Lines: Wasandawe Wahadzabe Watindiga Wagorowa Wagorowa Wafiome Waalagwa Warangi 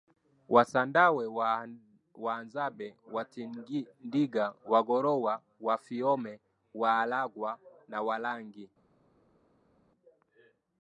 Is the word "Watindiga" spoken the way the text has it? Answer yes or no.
yes